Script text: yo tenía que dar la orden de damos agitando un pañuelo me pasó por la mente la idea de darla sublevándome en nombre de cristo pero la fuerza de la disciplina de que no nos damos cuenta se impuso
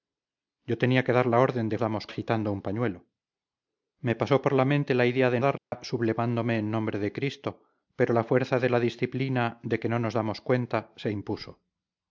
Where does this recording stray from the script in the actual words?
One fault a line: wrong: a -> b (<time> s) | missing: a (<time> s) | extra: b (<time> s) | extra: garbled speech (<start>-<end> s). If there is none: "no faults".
no faults